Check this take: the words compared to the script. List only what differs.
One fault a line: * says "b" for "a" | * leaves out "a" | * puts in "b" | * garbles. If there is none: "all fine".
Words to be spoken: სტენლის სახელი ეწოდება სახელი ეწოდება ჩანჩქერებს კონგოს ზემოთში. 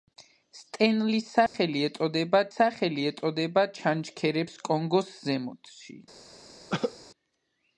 all fine